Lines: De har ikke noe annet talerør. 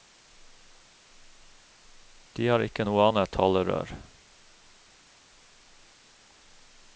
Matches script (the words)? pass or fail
pass